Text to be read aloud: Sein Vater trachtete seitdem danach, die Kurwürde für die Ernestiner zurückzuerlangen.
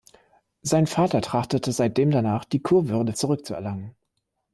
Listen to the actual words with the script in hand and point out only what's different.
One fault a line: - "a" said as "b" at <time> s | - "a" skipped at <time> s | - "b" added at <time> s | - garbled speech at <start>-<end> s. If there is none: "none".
- "für die Ernestiner" skipped at 3.1 s